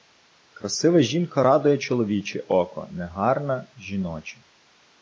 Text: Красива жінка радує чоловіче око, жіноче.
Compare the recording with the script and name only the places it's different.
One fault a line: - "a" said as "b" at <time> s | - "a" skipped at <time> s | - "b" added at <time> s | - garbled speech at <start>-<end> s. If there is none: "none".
- "негарна" added at 2.9 s